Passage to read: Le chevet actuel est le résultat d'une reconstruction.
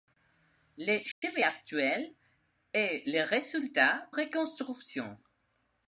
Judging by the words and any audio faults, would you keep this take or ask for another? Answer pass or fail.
fail